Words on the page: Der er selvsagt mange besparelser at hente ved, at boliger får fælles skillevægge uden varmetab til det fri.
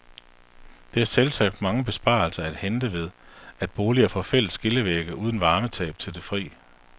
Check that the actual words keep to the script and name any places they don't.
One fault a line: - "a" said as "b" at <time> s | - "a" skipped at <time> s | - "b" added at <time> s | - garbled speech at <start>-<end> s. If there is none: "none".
none